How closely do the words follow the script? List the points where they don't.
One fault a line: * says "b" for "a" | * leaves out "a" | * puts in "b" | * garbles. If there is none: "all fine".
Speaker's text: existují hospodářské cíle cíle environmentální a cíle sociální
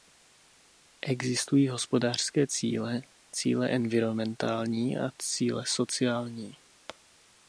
all fine